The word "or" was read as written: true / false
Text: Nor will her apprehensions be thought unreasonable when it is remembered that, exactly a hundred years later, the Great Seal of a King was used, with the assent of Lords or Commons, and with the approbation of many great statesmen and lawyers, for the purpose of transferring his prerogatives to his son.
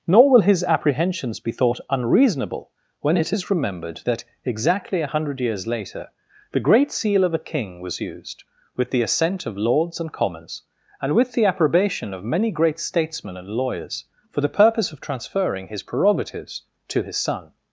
false